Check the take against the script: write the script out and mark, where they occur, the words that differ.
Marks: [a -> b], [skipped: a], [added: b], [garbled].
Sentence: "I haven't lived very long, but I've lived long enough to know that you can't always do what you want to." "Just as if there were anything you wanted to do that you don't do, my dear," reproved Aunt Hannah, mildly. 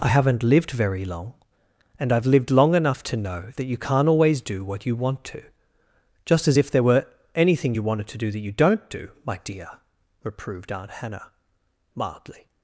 "I haven't lived very long, [but -> and] I've lived long enough to know that you can't always do what you want to." "Just as if there were anything you wanted to do that you don't do, my dear," reproved Aunt Hannah, mildly.